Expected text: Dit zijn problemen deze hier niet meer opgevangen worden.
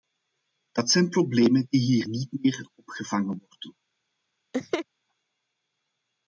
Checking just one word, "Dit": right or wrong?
wrong